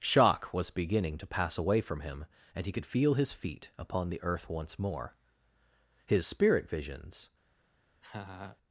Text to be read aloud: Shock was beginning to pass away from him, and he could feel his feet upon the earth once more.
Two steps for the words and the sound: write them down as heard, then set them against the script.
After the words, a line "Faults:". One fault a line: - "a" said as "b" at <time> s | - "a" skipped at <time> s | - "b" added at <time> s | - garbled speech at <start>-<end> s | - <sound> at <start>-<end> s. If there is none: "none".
Shock was beginning to pass away from him, and he could feel his feet upon the earth once more. His spirit visions
Faults:
- "His spirit visions" added at 6.1 s
- laugh at 8.0-8.6 s